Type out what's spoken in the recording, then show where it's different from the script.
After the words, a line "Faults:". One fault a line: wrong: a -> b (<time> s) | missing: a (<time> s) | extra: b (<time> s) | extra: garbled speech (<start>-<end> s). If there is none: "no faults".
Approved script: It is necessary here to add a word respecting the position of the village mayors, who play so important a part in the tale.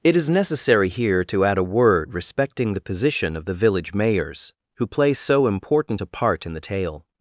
It is necessary here to add a word respecting the position of the village mayors, who play so important a part in the tale.
Faults:
no faults